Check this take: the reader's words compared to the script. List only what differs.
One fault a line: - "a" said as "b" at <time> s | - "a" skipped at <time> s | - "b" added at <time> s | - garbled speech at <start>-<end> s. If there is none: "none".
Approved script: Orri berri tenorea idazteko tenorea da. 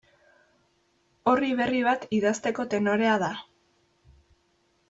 - "tenorea" said as "bat" at 1.9 s